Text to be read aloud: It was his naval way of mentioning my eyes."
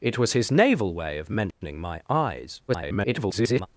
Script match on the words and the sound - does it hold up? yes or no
no